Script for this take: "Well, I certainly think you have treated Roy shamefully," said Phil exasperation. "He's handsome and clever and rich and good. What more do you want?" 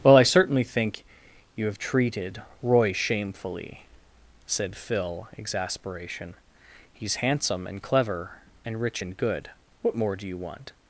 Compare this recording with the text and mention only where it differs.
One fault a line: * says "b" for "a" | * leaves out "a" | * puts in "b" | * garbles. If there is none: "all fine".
all fine